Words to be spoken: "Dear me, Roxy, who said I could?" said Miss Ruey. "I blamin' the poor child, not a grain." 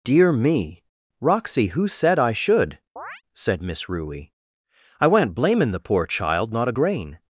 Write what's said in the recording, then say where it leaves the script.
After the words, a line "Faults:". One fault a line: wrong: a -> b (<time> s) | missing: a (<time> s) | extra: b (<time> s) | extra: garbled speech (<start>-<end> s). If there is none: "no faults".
"Dear me, Roxy, who said I should?" said Miss Ruey. "I wa'n't blamin' the poor child, not a grain."
Faults:
wrong: could -> should (2.3 s)
extra: wa'n't (5.1 s)